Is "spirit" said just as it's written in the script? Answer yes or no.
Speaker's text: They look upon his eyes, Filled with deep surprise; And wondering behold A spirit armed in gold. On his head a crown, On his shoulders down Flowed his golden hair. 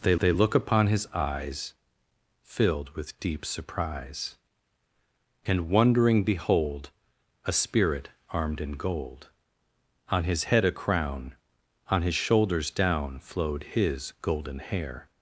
yes